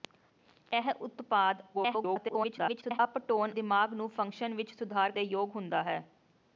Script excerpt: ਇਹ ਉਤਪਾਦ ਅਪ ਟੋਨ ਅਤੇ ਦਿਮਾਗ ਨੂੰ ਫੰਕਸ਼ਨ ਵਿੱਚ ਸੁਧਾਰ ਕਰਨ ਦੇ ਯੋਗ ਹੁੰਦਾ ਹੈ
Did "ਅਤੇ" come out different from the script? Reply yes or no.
yes